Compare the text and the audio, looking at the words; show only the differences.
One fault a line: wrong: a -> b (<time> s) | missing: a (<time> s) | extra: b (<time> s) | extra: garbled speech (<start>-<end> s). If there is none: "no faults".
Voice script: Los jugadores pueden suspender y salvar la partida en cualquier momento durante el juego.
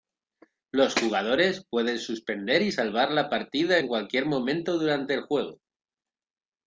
no faults